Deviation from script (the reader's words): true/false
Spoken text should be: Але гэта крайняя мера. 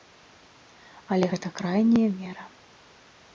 false